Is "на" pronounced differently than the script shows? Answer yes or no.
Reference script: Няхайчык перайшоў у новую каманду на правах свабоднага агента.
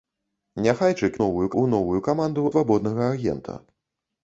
yes